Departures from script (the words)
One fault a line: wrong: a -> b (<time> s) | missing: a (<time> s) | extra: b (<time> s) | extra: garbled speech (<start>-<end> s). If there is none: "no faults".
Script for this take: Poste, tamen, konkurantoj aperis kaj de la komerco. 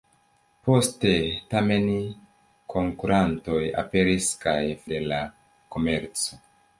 no faults